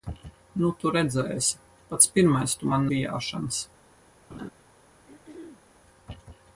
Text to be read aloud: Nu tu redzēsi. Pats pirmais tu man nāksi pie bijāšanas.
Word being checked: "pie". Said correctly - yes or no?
no